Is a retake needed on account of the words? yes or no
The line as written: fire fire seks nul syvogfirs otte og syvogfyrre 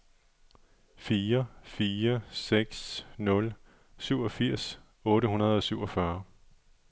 yes